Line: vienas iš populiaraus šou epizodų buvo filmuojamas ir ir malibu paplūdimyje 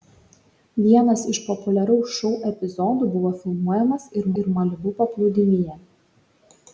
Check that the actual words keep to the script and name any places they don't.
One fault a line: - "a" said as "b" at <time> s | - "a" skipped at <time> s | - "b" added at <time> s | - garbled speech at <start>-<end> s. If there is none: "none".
none